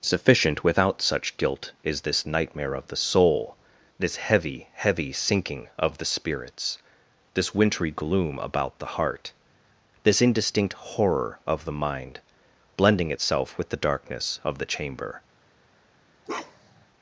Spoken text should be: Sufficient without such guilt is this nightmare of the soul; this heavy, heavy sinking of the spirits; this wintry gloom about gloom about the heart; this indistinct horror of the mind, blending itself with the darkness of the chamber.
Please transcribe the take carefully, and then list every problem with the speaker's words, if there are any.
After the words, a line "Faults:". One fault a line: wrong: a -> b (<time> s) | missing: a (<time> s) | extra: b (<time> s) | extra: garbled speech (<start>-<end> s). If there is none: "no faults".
Sufficient without such guilt is this nightmare of the soul; this heavy, heavy sinking of the spirits; this wintry gloom about the heart; this indistinct horror of the mind, blending itself with the darkness of the chamber.
Faults:
missing: gloom about (8.8 s)